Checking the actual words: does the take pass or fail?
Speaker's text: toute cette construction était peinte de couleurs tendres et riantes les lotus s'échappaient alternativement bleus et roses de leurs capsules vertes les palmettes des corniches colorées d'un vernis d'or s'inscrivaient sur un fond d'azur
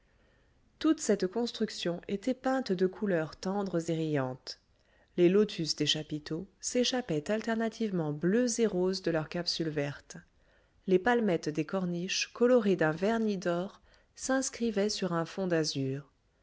fail